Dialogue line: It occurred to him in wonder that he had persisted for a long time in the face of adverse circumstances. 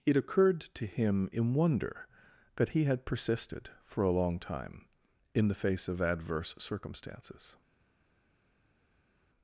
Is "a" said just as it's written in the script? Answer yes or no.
yes